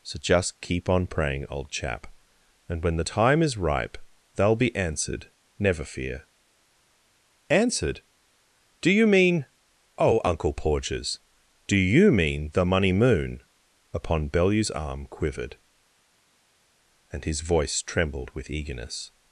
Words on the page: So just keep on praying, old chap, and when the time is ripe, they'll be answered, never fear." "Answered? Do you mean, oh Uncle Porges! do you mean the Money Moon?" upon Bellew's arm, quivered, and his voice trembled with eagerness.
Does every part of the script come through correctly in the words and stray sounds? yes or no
yes